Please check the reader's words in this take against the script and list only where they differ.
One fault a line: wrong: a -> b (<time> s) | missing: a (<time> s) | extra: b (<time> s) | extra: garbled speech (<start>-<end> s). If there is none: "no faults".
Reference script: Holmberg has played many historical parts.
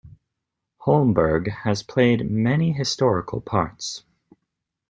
no faults